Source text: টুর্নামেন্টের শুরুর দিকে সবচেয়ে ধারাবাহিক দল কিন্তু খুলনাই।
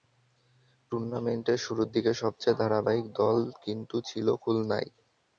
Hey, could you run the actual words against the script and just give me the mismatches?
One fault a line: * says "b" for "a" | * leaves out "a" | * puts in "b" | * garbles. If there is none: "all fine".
* puts in "ছিল"